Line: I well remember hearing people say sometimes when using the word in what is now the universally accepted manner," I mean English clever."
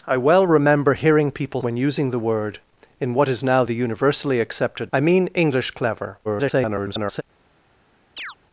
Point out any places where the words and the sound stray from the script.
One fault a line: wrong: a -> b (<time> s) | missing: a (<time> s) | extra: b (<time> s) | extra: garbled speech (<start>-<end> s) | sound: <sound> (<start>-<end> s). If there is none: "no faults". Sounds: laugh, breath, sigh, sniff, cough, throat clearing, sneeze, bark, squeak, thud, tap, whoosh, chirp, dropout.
missing: say sometimes (1.6 s)
missing: manner (4.9 s)
extra: garbled speech (6.2-7.2 s)
sound: chirp (8.2-8.4 s)